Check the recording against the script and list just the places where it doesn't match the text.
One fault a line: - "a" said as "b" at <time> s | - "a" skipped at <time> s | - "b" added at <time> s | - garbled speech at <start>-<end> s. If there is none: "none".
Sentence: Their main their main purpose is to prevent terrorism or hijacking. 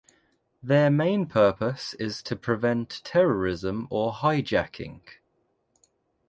- "their main" skipped at 1.3 s